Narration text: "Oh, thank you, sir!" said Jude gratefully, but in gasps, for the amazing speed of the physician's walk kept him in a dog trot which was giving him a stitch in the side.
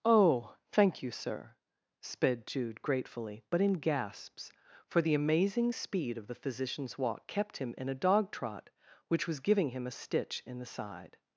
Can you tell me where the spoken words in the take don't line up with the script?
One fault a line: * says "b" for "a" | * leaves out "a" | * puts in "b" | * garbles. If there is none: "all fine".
* says "sped" for "said"